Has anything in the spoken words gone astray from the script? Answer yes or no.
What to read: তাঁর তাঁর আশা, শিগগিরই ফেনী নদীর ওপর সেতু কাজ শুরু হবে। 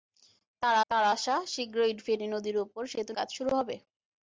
no